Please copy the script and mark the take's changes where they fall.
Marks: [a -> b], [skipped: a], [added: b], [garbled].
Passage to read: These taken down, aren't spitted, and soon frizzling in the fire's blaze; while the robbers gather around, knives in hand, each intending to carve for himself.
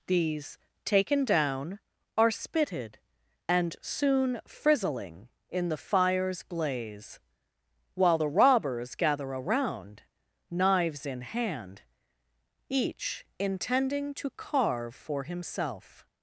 These taken down, [aren't -> are] spitted, and soon frizzling in the fire's blaze; while the robbers gather around, knives in hand, each intending to carve for himself.